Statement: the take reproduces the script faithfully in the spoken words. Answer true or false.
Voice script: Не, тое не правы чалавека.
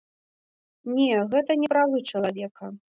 false